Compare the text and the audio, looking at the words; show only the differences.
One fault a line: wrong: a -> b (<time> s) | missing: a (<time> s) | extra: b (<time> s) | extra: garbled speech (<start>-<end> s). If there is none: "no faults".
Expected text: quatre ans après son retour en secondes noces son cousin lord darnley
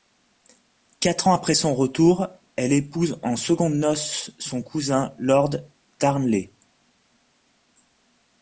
extra: elle épouse (2.5 s)